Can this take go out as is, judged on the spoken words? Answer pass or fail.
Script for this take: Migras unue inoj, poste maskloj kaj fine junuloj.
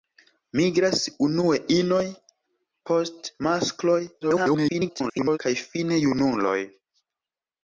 fail